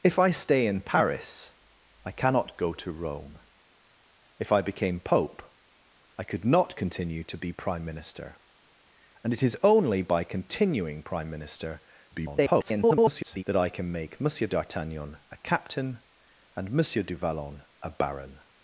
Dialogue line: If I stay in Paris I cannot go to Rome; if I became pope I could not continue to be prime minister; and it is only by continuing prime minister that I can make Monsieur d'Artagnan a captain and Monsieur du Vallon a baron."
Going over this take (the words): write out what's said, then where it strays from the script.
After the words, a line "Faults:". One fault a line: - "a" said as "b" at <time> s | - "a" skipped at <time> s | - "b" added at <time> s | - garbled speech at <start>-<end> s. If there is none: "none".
If I stay in Paris I cannot go to Rome; if I became pope I could not continue to be prime minister; and it is only by continuing prime minister [garbled] that I can make Monsieur d'Artagnan a captain and Monsieur du Vallon a baron."
Faults:
- garbled speech at 12.1-13.4 s